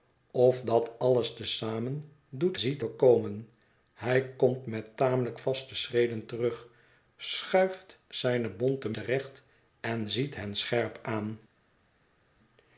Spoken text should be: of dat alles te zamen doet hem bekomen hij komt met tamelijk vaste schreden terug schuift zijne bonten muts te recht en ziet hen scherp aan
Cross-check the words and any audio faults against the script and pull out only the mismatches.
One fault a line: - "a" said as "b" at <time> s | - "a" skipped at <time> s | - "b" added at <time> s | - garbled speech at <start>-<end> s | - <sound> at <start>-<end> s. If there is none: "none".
- "hem" said as "ziet" at 2.6 s
- "muts" skipped at 9.0 s